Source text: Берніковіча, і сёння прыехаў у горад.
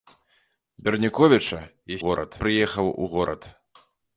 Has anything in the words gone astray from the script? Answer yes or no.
yes